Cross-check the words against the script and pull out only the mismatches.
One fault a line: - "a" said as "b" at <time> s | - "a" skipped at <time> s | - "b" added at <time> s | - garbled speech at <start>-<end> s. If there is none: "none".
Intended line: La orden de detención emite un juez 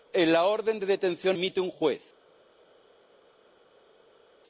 none